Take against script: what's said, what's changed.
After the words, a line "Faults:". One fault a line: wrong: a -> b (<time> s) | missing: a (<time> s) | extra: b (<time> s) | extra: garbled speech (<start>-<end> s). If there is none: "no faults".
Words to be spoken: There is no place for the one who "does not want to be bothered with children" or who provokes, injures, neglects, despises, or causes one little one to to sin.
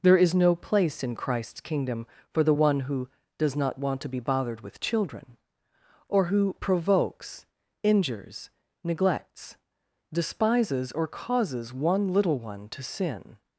There is no place in Christ's Kingdom for the one who "does not want to be bothered with children" or who provokes, injures, neglects, despises, or causes one little one to sin.
Faults:
extra: in Christ's Kingdom (1.0 s)
missing: to (12.8 s)